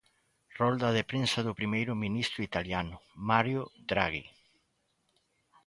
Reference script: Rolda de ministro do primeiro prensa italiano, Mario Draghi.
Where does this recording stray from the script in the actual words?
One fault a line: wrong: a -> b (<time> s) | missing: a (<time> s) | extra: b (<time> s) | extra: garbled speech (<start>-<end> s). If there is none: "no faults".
wrong: ministro -> prensa (1.1 s)
wrong: prensa -> ministro (2.0 s)